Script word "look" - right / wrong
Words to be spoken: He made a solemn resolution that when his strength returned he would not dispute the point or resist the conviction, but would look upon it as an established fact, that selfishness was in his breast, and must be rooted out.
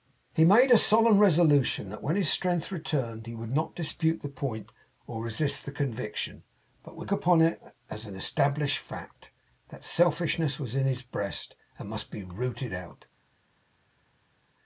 wrong